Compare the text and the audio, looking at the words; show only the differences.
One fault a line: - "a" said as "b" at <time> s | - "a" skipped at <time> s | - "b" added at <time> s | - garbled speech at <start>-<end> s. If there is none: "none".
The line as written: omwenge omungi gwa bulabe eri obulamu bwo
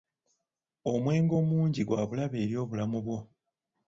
none